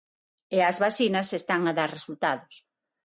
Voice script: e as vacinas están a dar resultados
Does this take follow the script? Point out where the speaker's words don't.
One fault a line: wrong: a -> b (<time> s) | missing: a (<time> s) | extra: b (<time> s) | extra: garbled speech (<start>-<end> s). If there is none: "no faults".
no faults